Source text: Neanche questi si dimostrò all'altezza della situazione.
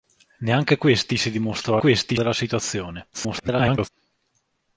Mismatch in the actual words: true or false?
true